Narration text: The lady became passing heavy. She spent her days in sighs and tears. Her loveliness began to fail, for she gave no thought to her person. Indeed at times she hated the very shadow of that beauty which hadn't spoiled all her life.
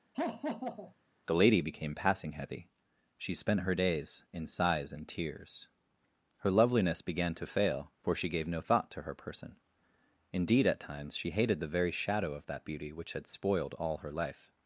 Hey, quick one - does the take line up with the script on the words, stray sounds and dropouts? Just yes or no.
no